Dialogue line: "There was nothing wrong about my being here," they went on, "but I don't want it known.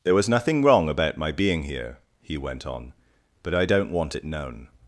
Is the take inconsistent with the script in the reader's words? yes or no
yes